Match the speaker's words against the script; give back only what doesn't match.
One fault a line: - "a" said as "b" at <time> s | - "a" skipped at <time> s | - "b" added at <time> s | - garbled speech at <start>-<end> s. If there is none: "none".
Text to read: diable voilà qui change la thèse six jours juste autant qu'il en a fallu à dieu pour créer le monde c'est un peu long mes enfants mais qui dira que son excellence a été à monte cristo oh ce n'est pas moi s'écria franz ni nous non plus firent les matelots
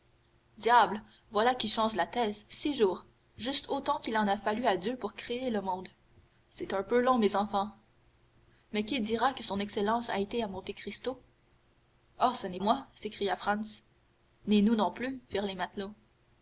- "pas" skipped at 12.6 s